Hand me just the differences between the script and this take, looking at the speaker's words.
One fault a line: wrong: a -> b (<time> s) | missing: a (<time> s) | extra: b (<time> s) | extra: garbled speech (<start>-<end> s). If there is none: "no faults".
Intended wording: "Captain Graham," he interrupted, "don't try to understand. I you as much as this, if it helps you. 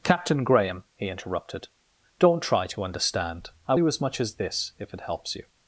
no faults